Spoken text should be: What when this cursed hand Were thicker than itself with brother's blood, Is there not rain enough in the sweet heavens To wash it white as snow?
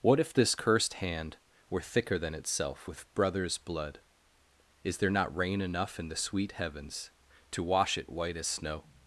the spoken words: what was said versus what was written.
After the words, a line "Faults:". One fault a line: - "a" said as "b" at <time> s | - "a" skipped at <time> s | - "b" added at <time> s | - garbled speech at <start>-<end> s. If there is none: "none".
What if this cursed hand Were thicker than itself with brother's blood, Is there not rain enough in the sweet heavens To wash it white as snow?
Faults:
- "when" said as "if" at 0.2 s